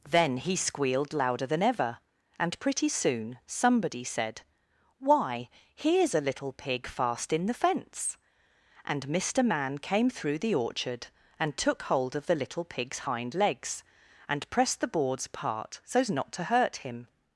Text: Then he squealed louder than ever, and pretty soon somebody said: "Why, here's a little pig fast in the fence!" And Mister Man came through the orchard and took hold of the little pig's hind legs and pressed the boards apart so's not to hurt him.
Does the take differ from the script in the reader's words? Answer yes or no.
no